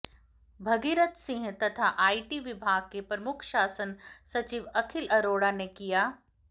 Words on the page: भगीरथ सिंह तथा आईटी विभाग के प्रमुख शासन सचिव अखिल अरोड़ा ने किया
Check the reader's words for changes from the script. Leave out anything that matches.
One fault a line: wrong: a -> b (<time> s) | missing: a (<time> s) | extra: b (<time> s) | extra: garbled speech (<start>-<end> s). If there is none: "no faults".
no faults